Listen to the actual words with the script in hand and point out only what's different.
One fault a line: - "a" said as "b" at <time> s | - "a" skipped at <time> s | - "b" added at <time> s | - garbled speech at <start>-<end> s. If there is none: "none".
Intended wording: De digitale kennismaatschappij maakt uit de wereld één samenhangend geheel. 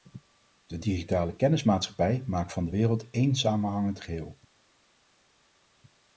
- "uit" said as "van" at 2.5 s